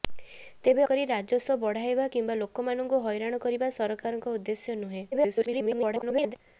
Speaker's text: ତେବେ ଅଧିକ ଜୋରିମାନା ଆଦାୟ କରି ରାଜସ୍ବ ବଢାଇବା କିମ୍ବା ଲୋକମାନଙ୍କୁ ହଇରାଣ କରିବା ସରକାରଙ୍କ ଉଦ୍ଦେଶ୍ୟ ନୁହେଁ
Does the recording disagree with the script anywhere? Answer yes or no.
yes